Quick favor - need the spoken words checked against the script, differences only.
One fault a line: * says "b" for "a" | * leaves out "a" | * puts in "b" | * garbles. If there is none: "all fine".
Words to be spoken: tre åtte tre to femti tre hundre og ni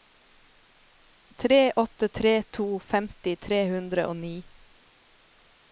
all fine